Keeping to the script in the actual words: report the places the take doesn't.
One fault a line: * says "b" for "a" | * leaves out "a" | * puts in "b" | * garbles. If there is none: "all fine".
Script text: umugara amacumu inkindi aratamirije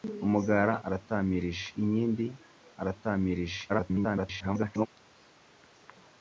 * says "aratamirije" for "amacumu"
* garbles